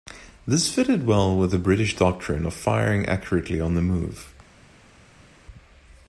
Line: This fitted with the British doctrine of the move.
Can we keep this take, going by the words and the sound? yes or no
no